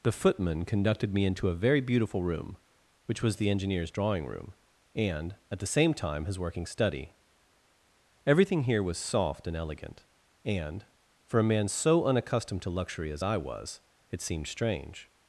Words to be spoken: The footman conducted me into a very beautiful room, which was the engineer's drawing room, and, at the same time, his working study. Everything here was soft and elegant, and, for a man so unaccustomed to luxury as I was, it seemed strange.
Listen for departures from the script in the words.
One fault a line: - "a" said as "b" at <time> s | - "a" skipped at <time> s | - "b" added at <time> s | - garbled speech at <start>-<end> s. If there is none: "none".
none